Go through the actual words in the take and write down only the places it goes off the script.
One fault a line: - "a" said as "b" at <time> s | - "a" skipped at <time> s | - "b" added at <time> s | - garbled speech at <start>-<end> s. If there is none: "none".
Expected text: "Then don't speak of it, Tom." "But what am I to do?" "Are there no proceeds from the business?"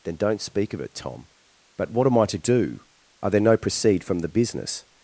- "proceeds" said as "proceed" at 3.6 s